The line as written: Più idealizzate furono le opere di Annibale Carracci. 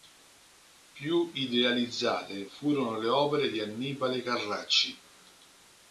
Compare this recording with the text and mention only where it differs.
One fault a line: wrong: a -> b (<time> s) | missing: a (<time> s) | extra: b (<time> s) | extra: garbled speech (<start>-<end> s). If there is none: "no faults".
no faults